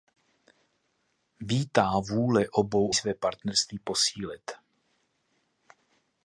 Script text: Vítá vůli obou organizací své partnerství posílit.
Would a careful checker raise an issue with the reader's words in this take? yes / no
yes